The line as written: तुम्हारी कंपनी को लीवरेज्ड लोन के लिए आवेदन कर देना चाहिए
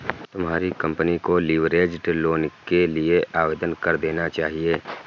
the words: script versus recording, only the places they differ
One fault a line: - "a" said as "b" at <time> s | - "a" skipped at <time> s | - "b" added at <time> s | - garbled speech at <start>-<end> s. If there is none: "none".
none